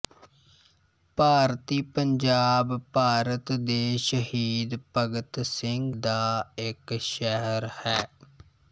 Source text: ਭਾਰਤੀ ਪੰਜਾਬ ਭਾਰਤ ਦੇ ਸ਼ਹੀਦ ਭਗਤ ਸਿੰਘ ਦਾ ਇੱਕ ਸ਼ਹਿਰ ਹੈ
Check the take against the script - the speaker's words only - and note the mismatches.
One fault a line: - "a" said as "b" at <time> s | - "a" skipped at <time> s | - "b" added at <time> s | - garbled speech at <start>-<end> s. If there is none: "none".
none